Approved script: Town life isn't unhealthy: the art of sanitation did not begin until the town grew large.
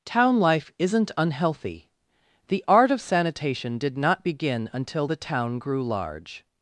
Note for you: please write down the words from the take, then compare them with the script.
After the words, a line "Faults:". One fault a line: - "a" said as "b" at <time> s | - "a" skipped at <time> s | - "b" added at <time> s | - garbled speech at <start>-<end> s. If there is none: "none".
Town life isn't unhealthy: the art of sanitation did not begin until the town grew large.
Faults:
none